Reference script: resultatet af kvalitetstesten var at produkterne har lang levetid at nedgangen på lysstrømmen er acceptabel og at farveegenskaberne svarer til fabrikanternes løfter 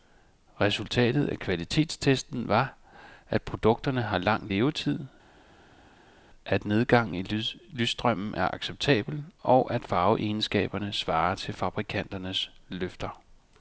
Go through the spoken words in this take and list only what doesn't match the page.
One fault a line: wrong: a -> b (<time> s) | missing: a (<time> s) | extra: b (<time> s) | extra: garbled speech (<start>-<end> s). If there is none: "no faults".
wrong: på -> i (7.1 s)